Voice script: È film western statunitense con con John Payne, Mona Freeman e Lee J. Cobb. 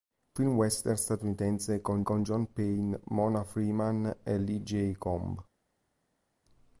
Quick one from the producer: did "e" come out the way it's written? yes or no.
yes